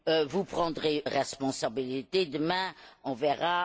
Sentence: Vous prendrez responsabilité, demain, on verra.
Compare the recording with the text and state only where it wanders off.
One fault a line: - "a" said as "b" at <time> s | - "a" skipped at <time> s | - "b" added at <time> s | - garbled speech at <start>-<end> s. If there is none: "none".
none